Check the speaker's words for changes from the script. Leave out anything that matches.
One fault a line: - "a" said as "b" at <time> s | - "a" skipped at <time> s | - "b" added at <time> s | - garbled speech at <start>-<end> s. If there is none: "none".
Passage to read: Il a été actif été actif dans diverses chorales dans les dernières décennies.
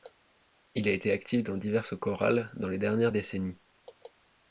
- "été actif" skipped at 1.4 s